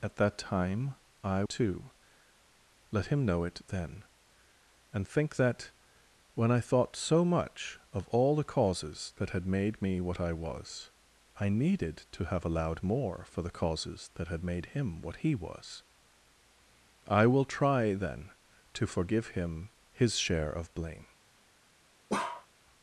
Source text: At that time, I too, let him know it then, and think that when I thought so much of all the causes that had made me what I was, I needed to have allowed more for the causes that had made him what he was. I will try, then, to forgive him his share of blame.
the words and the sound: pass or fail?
fail